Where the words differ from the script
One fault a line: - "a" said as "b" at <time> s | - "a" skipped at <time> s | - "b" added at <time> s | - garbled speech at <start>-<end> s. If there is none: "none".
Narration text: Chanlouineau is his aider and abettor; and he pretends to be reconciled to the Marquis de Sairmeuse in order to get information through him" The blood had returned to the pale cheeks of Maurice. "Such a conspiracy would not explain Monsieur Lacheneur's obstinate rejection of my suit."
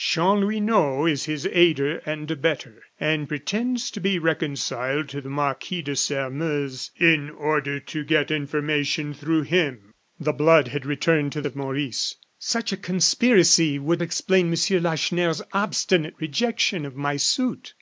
- "he" skipped at 3.3 s
- "the pale cheeks" skipped at 11.4 s
- "not" skipped at 14.0 s